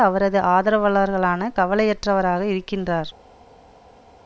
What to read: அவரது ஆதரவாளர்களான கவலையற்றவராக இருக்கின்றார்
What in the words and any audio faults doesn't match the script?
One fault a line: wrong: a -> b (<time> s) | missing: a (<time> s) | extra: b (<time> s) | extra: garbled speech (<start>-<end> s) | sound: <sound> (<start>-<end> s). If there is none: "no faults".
no faults